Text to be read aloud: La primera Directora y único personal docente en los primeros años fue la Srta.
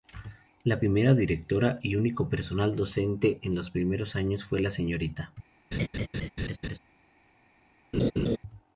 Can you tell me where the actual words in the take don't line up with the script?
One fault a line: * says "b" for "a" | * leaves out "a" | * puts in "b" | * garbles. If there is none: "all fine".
all fine